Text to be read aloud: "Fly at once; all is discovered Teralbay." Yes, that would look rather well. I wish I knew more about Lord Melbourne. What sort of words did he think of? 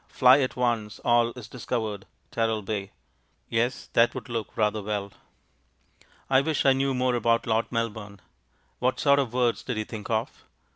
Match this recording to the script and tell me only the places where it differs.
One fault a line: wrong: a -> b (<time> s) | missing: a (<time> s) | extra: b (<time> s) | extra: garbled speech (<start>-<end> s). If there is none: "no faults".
no faults